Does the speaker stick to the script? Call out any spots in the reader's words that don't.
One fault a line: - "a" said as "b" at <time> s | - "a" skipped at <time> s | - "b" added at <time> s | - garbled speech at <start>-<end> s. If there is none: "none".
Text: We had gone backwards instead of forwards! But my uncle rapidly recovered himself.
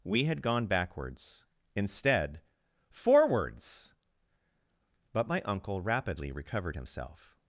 - "of" skipped at 2.4 s